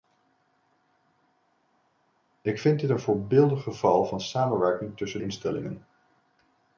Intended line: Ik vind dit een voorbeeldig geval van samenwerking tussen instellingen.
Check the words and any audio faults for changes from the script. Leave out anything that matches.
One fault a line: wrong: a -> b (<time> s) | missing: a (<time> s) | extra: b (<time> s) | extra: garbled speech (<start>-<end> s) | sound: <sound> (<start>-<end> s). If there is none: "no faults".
no faults